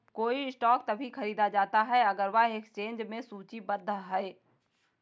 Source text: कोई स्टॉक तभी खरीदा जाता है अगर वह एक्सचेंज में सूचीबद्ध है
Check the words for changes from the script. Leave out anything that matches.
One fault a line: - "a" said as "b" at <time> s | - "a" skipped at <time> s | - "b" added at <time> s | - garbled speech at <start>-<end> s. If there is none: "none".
none